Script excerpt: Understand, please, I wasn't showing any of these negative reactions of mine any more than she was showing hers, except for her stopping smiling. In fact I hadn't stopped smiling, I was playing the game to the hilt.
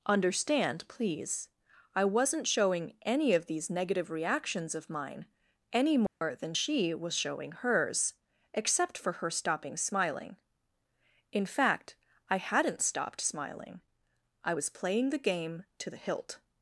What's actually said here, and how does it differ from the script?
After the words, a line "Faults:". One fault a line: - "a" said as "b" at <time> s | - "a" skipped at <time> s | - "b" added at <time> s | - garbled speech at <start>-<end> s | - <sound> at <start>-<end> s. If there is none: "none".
Understand, please, I wasn't showing any of these negative reactions of mine any more than she was showing hers, except for her stopping smiling. In fact I hadn't stopped smiling, I was playing the game to the hilt.
Faults:
- dropout at 6.1-6.2 s